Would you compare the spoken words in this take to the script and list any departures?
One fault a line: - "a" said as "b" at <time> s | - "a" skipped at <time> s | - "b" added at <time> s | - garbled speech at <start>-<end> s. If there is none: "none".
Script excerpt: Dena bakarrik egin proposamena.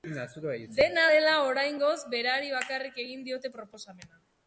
- "dela oraingoz berari" added at 1.1 s
- "diote" added at 3.3 s